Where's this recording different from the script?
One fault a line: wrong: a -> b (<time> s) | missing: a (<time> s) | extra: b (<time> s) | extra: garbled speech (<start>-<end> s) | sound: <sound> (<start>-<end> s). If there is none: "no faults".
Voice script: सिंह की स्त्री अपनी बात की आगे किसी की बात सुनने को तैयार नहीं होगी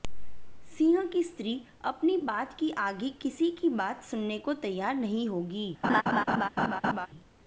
sound: laugh (5.8-7.1 s)